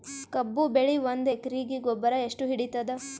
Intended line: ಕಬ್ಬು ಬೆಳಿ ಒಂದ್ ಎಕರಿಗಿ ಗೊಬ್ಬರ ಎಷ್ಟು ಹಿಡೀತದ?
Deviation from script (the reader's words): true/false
false